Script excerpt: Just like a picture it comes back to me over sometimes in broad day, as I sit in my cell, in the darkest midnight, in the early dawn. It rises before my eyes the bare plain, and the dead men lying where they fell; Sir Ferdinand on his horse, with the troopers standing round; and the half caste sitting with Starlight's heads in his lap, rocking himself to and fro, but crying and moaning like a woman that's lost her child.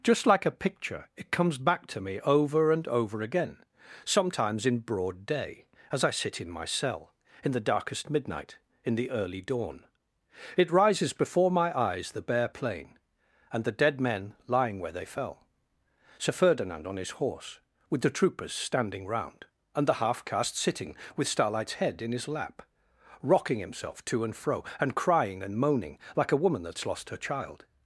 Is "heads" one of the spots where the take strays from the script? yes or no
yes